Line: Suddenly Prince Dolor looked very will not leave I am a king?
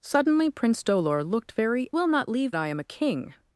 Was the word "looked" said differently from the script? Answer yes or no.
no